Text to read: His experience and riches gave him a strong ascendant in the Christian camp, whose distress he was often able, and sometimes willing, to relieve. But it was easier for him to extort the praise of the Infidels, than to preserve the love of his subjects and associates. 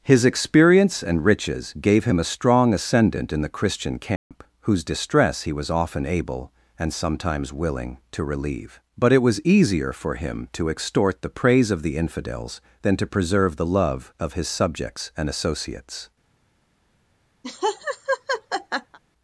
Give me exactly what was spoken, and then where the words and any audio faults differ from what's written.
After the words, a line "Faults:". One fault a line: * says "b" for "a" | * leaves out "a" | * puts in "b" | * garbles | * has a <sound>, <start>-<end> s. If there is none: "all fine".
His experience and riches gave him a strong ascendant in the Christian camp, whose distress he was often able, and sometimes willing, to relieve. But it was easier for him to extort the praise of the Infidels, than to preserve the love of his subjects and associates.
Faults:
* has a dropout, 4.2-4.3 s
* has a laugh, 17.4-19.0 s